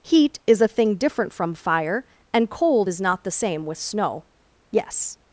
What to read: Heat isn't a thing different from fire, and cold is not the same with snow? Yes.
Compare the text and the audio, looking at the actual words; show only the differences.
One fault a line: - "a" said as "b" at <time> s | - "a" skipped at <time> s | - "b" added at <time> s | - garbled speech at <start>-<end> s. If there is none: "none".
- "isn't" said as "is" at 0.5 s